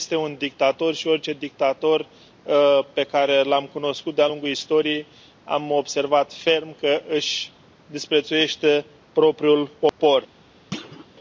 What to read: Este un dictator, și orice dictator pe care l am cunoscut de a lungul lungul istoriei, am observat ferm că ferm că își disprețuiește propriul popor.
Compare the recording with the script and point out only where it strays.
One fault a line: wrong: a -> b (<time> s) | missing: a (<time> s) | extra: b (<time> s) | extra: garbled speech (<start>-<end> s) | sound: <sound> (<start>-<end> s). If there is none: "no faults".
missing: lungul (4.5 s)
missing: ferm că (7.0 s)
sound: dropout (9.9-10.0 s)
sound: thud (10.7-11.1 s)